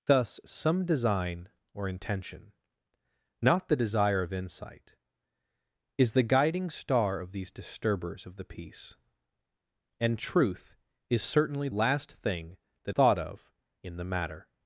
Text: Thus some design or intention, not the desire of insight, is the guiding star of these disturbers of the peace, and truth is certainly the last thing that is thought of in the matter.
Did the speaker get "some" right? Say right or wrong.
right